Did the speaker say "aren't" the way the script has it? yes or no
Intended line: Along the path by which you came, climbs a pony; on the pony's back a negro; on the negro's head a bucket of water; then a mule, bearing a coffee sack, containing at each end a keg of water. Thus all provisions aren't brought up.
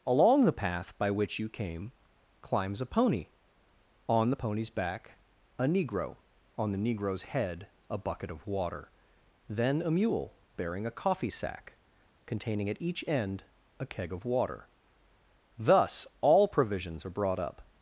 no